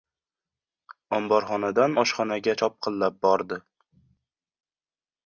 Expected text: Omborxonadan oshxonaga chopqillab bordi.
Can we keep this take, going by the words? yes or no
yes